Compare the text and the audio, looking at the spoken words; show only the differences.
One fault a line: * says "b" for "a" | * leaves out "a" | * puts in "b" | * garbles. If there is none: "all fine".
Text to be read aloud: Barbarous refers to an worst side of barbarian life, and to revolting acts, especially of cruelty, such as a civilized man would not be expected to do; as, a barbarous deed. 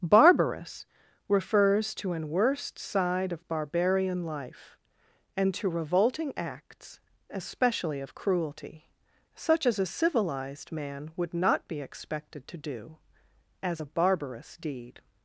all fine